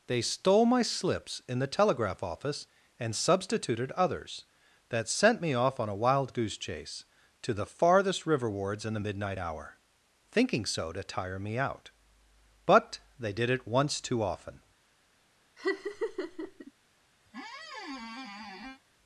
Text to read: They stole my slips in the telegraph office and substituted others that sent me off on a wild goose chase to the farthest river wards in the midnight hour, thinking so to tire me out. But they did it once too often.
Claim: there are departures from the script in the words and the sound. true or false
true